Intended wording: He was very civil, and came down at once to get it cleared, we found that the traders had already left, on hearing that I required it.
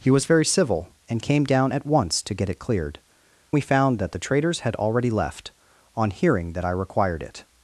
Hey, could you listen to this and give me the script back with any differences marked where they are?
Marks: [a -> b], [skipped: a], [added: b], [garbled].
He was very civil, and came down at once to get it cleared, we found that the traders had already left, on hearing that I required it.